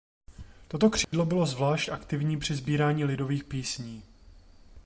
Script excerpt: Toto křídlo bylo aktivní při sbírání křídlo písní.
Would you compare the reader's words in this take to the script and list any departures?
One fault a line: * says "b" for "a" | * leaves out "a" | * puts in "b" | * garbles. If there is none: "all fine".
* puts in "zvlášť"
* says "lidových" for "křídlo"